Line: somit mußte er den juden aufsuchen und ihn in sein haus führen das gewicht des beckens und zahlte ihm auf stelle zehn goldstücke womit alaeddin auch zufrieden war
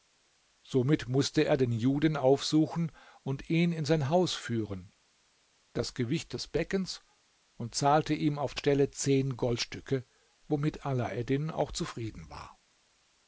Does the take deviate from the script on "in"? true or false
false